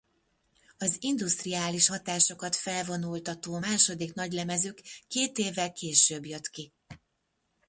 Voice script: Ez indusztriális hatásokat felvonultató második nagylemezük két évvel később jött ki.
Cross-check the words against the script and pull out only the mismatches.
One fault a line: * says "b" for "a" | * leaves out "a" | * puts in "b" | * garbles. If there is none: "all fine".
* says "Az" for "Ez"